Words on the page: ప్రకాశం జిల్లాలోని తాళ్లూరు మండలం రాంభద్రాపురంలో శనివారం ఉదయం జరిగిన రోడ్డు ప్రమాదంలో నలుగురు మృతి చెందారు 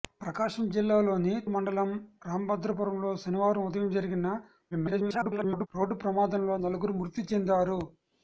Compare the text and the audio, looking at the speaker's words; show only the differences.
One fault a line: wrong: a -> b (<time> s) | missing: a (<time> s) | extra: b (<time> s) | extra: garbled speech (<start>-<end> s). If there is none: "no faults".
missing: తాళ్లూరు (1.3 s)
extra: garbled speech (4.7-5.7 s)